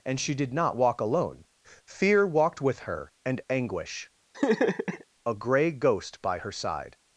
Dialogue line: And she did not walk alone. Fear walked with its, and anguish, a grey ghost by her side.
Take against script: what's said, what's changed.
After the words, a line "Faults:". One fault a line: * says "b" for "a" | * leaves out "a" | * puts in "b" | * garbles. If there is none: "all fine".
And she did not walk alone. Fear walked with her, and anguish, a grey ghost by her side.
Faults:
* says "her" for "its"